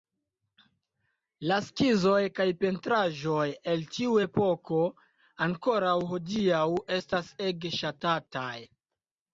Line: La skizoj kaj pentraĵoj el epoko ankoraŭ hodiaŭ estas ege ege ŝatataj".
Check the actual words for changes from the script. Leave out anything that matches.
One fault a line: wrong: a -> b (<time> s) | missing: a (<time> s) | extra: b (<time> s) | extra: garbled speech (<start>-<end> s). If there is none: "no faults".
extra: tiu (4.0 s)
missing: ege (7.7 s)